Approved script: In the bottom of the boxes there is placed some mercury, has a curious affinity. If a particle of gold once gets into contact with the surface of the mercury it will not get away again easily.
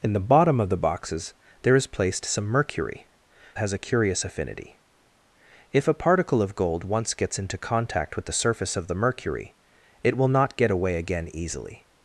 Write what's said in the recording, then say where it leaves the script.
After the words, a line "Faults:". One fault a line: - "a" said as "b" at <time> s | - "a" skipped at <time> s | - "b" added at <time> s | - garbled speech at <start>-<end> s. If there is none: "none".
In the bottom of the boxes there is placed some mercury, has a curious affinity. If a particle of gold once gets into contact with the surface of the mercury it will not get away again easily.
Faults:
none